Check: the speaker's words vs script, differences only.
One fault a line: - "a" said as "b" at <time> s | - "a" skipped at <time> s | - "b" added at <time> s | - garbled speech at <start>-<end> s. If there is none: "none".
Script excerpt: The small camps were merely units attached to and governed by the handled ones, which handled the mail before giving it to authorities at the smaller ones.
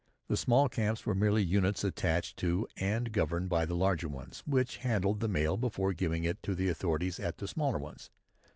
- "handled" said as "larger" at 3.8 s
- "the" added at 6.5 s